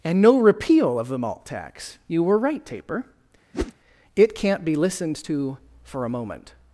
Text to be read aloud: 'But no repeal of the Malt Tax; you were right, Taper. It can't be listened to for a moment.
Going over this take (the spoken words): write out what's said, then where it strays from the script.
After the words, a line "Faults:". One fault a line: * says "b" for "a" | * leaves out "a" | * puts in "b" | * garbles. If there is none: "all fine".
'And no repeal of the Malt Tax; you were right, Taper. It can't be listened to for a moment.
Faults:
* says "And" for "But"